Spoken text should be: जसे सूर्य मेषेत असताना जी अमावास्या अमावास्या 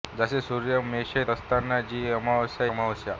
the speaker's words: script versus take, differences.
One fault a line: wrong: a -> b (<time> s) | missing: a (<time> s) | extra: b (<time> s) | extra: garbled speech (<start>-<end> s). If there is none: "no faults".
no faults